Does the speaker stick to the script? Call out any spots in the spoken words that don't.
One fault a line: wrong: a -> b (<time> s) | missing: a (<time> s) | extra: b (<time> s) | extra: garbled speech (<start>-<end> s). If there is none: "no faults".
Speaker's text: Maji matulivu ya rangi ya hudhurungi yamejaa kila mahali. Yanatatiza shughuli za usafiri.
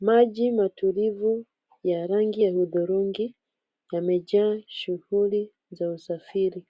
missing: kila mahali Yanatatiza (4.6 s)